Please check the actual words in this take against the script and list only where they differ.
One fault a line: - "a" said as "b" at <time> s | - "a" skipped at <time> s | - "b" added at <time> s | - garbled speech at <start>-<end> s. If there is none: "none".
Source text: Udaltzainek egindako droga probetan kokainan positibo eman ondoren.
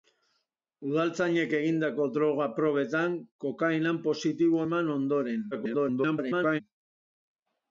- garbled speech at 5.5-6.6 s